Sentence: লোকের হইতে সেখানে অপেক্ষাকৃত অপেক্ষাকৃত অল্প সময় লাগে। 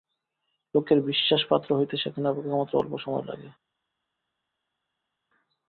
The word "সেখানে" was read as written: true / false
true